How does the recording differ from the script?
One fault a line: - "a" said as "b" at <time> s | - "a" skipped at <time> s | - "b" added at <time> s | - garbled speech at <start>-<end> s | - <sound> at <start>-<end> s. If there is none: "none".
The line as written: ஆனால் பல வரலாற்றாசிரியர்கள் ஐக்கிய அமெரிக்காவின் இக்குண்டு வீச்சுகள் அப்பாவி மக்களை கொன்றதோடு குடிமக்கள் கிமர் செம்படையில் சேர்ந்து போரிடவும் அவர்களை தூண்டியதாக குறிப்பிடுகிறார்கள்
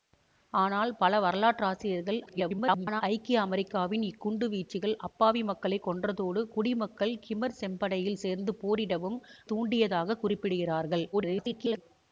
- garbled speech at 2.3-3.0 s
- "அவர்களை" skipped at 9.2 s
- garbled speech at 11.1-11.8 s